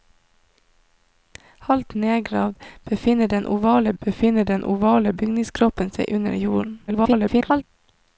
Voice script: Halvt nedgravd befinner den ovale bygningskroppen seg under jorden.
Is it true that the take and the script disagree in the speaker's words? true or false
true